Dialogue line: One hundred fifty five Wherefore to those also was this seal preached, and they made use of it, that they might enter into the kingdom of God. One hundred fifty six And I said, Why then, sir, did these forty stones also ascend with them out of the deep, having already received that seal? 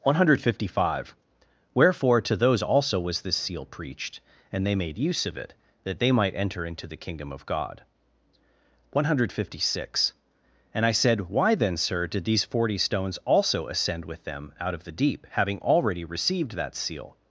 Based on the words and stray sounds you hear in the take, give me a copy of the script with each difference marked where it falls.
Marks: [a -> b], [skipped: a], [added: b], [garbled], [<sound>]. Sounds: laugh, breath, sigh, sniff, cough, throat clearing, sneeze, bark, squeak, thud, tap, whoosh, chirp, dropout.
One hundred fifty five Wherefore to those also was this seal preached, and they made use of it, that they might enter into the kingdom of God. One hundred fifty six And I said, Why then, sir, did these forty stones also ascend with them out of the deep, having already received that seal?